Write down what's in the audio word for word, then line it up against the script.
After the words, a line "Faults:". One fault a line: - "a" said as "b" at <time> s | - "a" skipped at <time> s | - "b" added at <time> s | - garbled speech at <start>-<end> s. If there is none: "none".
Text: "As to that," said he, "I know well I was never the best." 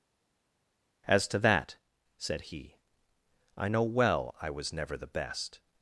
"As to that," said he, "I know well I was never the best."
Faults:
none